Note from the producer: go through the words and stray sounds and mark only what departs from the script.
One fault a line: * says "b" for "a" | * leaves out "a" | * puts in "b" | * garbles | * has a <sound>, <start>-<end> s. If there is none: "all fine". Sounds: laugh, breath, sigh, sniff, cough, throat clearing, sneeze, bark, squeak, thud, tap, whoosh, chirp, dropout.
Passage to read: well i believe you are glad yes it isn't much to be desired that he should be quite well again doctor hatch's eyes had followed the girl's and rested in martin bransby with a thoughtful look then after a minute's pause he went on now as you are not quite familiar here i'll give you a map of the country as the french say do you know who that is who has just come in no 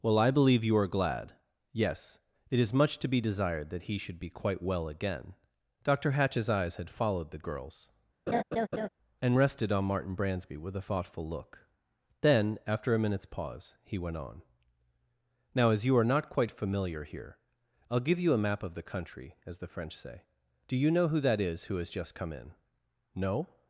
* says "is" for "isn't"
* has a laugh, 8.3-8.9 s
* says "on" for "in"